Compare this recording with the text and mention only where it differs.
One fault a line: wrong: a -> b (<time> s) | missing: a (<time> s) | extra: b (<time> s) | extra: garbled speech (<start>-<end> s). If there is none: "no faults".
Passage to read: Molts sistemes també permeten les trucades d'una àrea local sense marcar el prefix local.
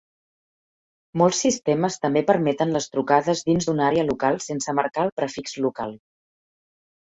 extra: dins (3.5 s)